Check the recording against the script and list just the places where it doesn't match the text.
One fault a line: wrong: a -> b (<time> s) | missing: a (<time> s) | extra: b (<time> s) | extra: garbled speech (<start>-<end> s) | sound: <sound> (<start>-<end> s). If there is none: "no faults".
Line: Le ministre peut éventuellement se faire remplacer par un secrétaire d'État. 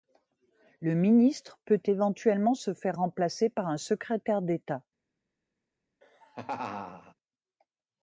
sound: laugh (6.0-7.1 s)